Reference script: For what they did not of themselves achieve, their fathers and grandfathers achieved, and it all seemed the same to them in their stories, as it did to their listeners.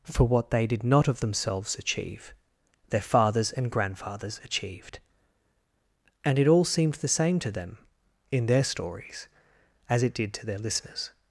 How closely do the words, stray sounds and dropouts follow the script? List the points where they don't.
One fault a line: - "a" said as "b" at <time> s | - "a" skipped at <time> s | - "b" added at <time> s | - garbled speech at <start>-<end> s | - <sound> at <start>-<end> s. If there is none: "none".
none